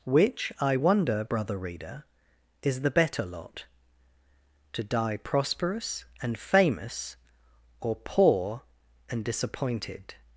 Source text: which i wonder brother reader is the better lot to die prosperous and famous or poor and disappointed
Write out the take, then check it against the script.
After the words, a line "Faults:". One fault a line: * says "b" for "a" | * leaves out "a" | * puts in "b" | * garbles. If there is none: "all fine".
which i wonder brother reader is the better lot to die prosperous and famous or poor and disappointed
Faults:
all fine